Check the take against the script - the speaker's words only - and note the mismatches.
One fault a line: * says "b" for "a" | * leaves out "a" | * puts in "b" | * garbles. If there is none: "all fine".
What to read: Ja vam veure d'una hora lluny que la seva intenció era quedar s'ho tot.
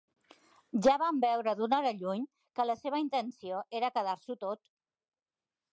all fine